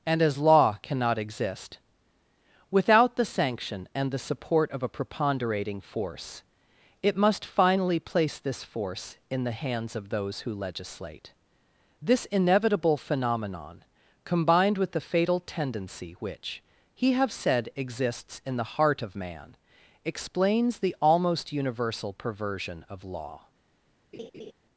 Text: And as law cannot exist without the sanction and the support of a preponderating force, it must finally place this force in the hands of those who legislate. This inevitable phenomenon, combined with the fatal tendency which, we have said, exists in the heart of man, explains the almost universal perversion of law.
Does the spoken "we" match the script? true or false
false